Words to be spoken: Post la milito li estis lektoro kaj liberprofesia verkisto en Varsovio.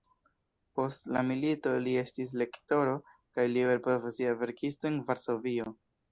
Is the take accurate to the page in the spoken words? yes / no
yes